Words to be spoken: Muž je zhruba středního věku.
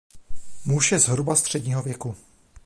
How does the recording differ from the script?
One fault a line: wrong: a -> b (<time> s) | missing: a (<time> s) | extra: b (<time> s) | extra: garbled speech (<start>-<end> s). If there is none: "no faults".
no faults